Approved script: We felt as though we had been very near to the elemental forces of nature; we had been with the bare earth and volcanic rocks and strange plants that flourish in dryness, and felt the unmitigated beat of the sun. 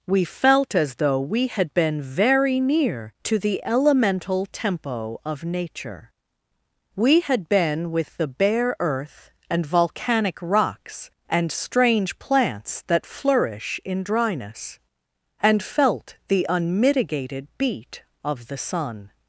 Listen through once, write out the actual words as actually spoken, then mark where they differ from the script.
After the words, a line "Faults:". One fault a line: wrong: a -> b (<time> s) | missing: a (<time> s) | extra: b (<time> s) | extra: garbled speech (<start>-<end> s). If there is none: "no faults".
We felt as though we had been very near to the elemental tempo of nature; we had been with the bare earth and volcanic rocks and strange plants that flourish in dryness, and felt the unmitigated beat of the sun.
Faults:
wrong: forces -> tempo (4.5 s)